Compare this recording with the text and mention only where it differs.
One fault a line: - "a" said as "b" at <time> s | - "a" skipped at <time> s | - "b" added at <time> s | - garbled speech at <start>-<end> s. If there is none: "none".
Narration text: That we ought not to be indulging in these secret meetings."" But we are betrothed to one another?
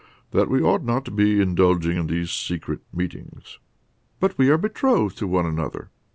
none